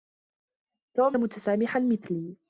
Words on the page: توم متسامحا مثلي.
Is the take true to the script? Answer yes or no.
yes